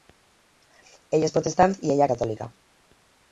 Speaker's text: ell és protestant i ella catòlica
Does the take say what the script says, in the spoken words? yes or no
yes